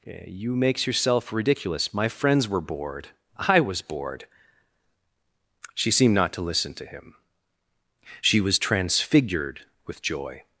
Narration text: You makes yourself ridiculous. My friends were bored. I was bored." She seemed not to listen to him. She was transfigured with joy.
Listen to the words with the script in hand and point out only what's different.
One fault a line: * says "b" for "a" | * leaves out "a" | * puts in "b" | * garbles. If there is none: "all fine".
all fine